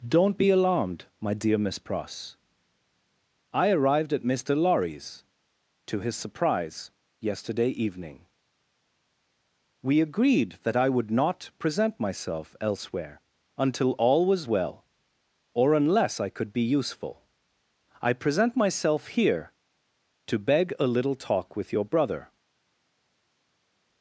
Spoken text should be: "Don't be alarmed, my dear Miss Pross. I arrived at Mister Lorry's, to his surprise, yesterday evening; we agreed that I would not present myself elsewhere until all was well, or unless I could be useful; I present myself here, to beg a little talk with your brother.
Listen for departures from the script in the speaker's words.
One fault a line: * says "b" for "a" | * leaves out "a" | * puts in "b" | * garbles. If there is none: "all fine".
all fine